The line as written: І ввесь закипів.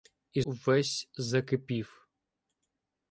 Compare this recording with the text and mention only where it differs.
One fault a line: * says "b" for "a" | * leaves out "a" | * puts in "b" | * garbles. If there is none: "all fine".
all fine